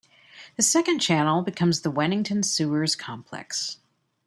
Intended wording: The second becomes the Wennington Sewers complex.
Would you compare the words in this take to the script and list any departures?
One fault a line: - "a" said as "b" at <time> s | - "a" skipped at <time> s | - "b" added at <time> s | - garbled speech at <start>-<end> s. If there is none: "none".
- "channel" added at 1.0 s